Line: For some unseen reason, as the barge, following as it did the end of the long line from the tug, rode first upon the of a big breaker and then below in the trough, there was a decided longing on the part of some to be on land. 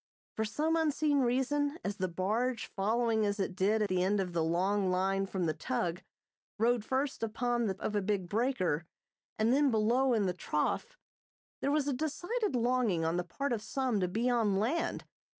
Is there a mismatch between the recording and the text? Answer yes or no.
no